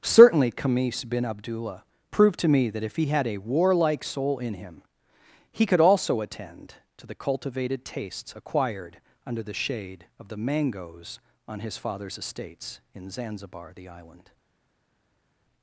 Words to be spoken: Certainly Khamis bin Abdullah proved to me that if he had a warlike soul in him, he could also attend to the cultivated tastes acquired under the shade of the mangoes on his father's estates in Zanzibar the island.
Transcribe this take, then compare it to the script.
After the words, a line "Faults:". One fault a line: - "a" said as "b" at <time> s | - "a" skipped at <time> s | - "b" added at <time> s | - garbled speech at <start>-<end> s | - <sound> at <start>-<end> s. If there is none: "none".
Certainly Khamis bin Abdullah proved to me that if he had a warlike soul in him, he could also attend to the cultivated tastes acquired under the shade of the mangoes on his father's estates in Zanzibar the island.
Faults:
none